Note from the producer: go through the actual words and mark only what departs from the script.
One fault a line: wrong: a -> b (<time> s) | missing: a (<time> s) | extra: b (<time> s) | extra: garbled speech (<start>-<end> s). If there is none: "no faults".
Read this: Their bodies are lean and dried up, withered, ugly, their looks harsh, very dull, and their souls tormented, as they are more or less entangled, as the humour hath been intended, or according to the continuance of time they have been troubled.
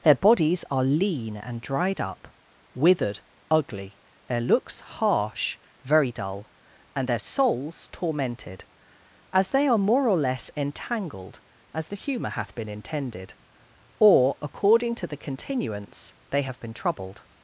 missing: of time (16.1 s)